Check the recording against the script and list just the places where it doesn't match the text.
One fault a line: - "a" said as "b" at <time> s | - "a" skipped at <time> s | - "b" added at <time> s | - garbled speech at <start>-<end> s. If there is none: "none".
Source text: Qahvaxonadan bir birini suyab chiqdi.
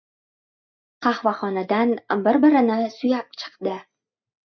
none